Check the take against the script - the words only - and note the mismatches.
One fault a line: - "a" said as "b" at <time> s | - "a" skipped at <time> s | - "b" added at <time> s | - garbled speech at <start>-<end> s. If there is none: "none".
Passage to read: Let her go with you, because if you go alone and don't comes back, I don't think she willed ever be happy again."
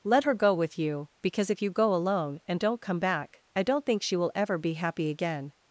- "comes" said as "come" at 2.8 s
- "willed" said as "will" at 4.1 s